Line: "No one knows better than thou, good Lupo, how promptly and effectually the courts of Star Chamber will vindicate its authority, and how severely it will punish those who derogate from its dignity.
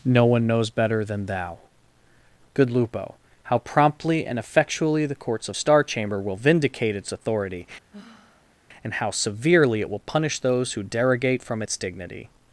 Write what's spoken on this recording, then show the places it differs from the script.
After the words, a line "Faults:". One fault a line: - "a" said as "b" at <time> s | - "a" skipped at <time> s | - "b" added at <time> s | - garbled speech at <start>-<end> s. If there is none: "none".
"No one knows better than thou, good Lupo, how promptly and effectually the courts of Star Chamber will vindicate its authority, and how severely it will punish those who derogate from its dignity.
Faults:
none